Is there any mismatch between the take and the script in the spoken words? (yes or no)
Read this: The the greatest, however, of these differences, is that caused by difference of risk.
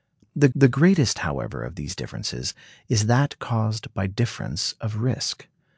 no